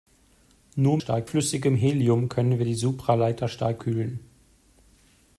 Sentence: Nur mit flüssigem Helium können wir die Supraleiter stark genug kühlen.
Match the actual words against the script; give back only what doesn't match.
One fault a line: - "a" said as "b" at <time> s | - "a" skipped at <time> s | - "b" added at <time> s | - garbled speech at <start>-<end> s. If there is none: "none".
- "mit" said as "stark" at 1.0 s
- "genug" skipped at 3.8 s